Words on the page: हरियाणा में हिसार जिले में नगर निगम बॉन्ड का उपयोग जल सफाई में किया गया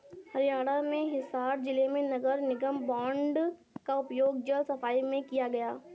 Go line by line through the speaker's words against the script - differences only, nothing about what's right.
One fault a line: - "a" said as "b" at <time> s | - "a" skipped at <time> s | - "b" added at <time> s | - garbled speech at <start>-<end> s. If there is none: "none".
none